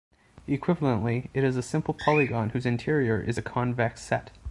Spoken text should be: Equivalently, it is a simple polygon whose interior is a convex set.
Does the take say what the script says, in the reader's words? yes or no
yes